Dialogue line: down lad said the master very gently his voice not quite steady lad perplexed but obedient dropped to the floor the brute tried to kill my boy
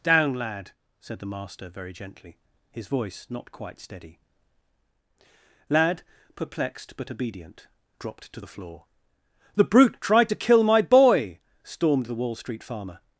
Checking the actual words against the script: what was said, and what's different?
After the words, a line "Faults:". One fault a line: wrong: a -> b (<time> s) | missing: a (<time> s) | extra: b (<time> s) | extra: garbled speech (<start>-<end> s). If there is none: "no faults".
down lad said the master very gently his voice not quite steady lad perplexed but obedient dropped to the floor the brute tried to kill my boy stormed the wall street farmer
Faults:
extra: stormed the wall street farmer (11.6 s)